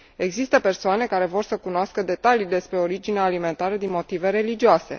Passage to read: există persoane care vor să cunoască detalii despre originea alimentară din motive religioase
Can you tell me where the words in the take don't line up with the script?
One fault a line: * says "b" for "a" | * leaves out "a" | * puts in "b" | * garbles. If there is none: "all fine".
all fine